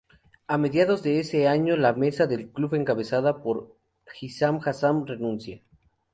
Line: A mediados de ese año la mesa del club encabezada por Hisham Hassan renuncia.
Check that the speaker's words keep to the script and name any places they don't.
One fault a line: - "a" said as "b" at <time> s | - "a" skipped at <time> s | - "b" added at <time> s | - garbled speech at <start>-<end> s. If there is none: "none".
none